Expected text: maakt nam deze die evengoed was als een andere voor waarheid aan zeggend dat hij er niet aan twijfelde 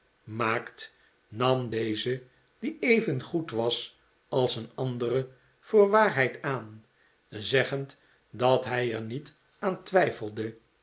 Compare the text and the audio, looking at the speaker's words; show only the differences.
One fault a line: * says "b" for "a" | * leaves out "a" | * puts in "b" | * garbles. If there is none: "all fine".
all fine